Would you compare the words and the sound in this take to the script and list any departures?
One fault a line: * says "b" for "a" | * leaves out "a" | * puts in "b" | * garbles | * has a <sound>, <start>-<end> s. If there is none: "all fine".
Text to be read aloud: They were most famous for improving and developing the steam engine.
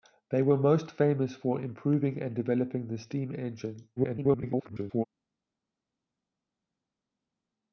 * garbles